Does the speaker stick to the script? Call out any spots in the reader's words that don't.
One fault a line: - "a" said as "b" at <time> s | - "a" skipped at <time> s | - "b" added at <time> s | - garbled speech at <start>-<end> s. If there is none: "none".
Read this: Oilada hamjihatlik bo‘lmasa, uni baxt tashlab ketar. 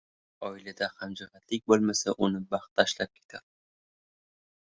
none